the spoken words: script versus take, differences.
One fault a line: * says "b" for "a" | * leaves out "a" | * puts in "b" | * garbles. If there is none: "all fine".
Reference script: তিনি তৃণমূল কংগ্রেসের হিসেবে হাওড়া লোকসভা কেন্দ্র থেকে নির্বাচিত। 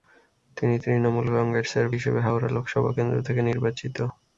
all fine